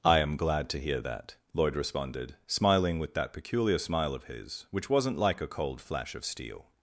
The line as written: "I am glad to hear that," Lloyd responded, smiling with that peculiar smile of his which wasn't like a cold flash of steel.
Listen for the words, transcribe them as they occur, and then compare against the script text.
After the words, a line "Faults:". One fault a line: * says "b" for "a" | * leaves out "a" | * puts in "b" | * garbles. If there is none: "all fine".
"I am glad to hear that," Lloyd responded, smiling with that peculiar smile of his which wasn't like a cold flash of steel.
Faults:
all fine